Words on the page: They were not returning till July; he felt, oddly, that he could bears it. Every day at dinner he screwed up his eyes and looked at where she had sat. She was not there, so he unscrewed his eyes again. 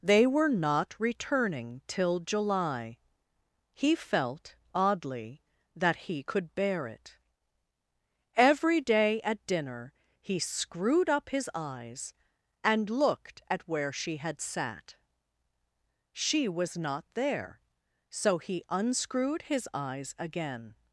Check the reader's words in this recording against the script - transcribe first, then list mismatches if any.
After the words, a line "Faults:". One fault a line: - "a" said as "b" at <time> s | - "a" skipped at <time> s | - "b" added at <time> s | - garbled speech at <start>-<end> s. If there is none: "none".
They were not returning till July; he felt, oddly, that he could bear it. Every day at dinner he screwed up his eyes and looked at where she had sat. She was not there, so he unscrewed his eyes again.
Faults:
- "bears" said as "bear" at 6.5 s